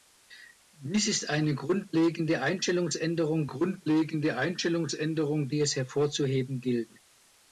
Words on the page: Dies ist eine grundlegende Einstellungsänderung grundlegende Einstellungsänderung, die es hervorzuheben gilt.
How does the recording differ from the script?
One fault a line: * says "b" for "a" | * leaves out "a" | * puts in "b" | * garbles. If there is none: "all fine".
all fine